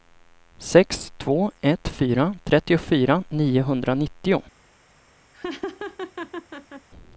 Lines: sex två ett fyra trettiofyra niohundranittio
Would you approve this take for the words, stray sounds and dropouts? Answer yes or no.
no